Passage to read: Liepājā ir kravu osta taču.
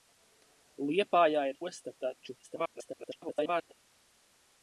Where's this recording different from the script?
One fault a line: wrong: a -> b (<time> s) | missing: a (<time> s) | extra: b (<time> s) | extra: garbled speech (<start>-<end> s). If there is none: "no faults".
missing: kravu (1.6 s)
extra: garbled speech (2.4-3.7 s)